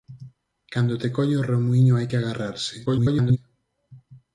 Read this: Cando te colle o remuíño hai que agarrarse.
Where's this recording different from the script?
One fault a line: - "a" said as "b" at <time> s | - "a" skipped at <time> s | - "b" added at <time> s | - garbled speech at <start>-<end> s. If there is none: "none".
- garbled speech at 2.9-3.4 s